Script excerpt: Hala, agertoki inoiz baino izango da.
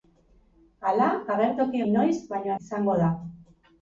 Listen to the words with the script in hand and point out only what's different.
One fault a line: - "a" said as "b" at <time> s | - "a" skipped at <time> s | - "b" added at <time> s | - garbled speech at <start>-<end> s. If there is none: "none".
none